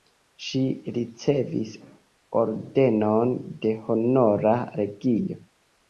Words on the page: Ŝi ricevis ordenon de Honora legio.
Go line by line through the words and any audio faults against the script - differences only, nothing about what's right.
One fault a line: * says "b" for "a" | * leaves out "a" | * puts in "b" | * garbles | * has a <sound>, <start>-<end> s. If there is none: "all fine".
all fine